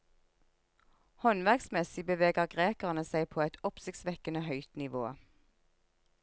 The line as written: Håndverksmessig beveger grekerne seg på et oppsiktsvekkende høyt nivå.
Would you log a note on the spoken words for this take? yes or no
no